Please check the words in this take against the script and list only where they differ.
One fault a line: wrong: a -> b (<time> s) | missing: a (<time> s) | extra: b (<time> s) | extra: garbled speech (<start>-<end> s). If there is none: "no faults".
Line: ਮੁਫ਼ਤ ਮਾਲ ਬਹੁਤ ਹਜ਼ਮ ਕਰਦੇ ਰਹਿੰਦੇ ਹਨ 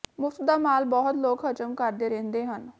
extra: ਦਾ (0.4 s)
extra: ਲੋਕ (1.2 s)